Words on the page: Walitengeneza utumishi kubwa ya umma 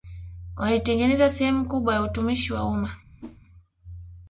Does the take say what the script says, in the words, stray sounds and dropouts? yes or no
no